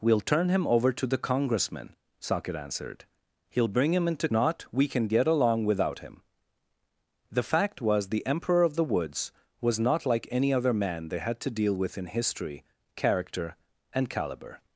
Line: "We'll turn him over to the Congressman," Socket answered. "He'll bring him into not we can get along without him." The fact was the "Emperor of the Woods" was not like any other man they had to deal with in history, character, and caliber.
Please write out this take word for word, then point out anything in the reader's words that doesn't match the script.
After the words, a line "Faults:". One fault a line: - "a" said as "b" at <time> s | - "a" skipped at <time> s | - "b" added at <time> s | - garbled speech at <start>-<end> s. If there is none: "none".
"We'll turn him over to the Congressman," Socket answered. "He'll bring him into not we can get along without him." The fact was the "Emperor of the Woods" was not like any other man they had to deal with in history, character, and caliber.
Faults:
none